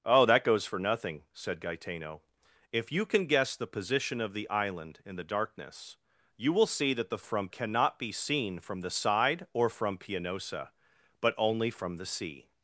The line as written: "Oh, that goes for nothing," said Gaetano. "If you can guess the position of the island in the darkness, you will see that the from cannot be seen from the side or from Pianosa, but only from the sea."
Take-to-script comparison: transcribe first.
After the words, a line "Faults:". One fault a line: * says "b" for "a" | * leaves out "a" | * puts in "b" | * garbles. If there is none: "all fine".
"Oh, that goes for nothing," said Gaetano. "If you can guess the position of the island in the darkness, you will see that the from cannot be seen from the side or from Pianosa, but only from the sea."
Faults:
all fine